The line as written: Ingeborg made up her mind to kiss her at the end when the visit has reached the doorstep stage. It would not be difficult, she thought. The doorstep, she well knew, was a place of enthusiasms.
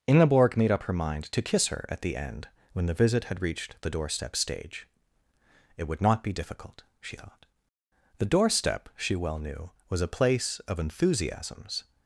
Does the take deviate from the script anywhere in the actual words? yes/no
yes